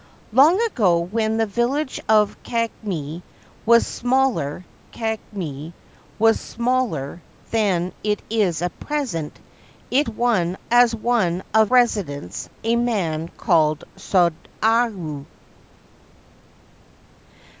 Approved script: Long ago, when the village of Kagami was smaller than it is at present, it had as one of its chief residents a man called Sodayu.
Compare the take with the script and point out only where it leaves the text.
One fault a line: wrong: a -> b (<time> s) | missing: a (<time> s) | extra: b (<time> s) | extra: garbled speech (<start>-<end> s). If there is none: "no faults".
extra: Kagami was smaller (4.9 s)
wrong: had -> one (10.1 s)
missing: its chief (11.7 s)